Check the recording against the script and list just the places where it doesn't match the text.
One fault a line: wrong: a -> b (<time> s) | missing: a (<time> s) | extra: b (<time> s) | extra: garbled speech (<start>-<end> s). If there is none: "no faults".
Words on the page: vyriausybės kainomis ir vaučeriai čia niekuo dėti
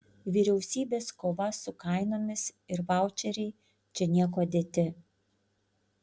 extra: kova su (1.2 s)